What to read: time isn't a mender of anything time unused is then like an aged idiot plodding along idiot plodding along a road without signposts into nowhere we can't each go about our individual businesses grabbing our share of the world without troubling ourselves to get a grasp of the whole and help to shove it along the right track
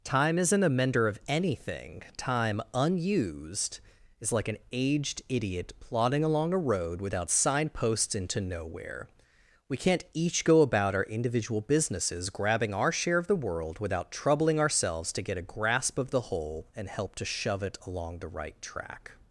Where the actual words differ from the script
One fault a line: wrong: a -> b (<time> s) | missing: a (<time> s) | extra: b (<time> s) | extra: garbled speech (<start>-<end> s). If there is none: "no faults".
missing: then (4.3 s)
missing: idiot plodding along (6.5 s)